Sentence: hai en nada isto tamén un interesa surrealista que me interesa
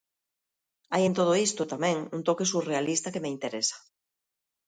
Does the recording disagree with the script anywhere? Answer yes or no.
yes